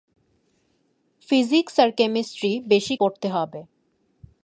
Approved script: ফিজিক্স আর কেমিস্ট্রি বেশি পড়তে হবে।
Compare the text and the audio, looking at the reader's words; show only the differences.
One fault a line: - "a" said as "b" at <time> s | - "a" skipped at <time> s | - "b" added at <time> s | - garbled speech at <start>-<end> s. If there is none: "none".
none